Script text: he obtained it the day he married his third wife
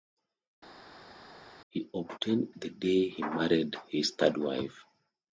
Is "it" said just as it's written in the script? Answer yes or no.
no